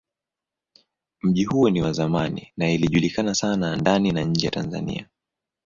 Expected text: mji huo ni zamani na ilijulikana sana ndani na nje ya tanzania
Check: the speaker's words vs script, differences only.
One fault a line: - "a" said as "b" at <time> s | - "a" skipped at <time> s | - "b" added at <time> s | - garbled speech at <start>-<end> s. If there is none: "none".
- "wa" added at 1.8 s